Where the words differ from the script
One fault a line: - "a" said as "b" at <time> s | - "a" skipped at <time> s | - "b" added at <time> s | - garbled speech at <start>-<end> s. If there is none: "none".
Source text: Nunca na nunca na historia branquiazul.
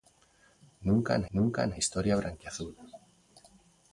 none